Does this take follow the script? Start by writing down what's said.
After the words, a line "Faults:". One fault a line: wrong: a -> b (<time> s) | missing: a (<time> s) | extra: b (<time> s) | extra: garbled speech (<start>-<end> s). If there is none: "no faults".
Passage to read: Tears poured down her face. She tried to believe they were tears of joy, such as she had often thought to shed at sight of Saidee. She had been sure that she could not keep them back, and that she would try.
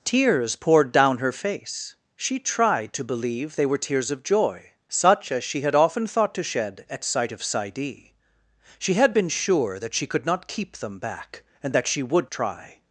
Tears poured down her face. She tried to believe they were tears of joy, such as she had often thought to shed at sight of Saidee. She had been sure that she could not keep them back, and that she would try.
Faults:
no faults